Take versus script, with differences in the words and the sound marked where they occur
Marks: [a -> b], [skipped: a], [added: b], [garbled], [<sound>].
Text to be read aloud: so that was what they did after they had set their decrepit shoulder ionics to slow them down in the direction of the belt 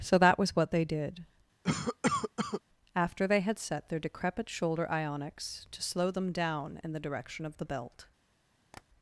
so that was what they did [cough] after they had set their decrepit shoulder ionics to slow them down in the direction of the belt [tap]